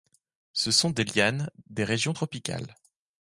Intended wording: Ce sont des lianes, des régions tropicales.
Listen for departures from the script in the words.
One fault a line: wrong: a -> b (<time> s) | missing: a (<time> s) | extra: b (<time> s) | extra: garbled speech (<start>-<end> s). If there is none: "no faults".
no faults